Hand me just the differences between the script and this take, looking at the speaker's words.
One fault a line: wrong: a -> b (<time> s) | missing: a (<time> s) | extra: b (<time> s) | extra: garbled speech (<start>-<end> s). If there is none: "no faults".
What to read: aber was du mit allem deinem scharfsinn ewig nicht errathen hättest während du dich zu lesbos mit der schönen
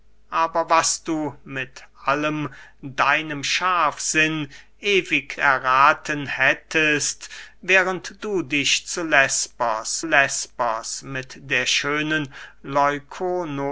missing: nicht (5.4 s)
extra: lesbos (10.0 s)